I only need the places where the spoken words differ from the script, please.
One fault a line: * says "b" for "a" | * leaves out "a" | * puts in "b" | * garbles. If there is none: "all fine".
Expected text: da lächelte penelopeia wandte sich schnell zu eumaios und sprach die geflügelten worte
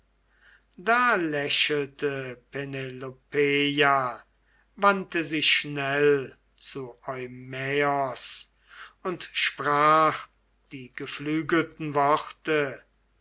all fine